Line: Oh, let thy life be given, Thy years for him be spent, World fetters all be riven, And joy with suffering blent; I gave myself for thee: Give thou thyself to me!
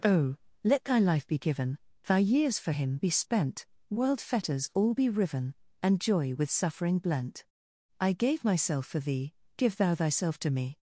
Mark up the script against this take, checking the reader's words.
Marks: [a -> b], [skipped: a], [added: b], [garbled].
Oh, let thy life be given, Thy years for him be spent, World fetters all be riven, And joy with suffering blent; I gave myself for thee: Give thou thyself to me!